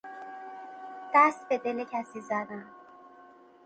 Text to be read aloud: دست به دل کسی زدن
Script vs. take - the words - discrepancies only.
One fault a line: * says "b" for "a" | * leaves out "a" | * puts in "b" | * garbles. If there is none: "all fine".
all fine